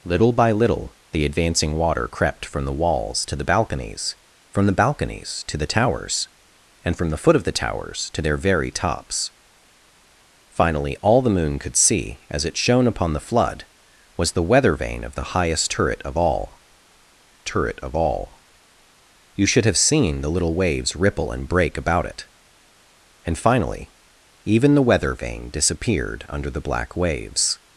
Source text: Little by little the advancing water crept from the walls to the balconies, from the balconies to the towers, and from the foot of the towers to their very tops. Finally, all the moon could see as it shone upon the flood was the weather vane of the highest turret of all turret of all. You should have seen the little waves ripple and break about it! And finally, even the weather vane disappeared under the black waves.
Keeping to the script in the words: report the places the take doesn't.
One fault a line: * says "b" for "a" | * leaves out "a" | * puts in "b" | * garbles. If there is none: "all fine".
all fine